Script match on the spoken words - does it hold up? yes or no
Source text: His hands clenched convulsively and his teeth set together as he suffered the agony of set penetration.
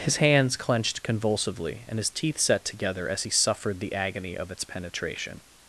no